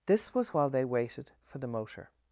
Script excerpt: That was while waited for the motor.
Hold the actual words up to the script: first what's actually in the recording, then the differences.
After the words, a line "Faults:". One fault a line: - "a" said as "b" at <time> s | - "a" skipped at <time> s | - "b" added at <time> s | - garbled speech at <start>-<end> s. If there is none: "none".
This was while they waited for the motor.
Faults:
- "That" said as "This" at 0.1 s
- "they" added at 0.7 s